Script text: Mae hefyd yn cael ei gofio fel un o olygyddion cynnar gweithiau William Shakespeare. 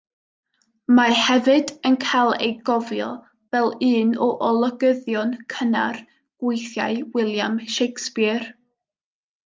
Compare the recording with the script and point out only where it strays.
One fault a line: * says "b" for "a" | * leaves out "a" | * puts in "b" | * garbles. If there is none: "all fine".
all fine